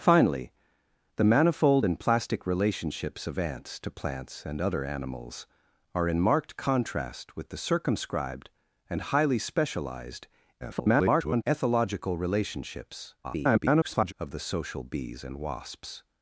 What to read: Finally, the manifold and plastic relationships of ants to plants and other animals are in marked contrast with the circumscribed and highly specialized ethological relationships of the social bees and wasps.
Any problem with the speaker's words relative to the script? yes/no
yes